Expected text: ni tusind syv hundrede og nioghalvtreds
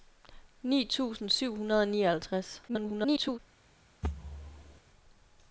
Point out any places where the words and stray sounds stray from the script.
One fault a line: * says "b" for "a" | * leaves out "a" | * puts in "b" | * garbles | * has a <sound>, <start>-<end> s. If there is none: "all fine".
* garbles
* has a thud, 4.0-4.8 s